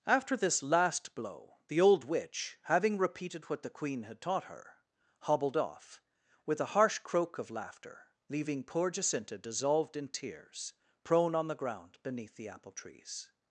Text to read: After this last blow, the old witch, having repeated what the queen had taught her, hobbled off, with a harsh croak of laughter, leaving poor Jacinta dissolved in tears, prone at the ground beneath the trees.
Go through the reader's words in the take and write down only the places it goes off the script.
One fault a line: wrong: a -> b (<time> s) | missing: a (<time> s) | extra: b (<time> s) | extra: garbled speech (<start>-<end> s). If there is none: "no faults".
wrong: at -> on (11.3 s)
extra: apple (12.5 s)